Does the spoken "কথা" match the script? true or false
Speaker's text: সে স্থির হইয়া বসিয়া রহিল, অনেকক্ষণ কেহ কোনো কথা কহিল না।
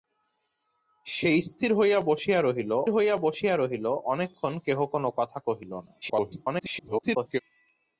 true